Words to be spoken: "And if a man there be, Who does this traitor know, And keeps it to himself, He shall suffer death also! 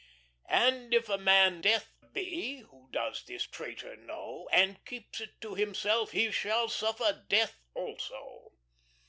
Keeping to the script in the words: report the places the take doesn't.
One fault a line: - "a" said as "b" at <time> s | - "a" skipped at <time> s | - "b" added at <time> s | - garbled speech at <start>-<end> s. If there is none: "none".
- "there" said as "death" at 1.6 s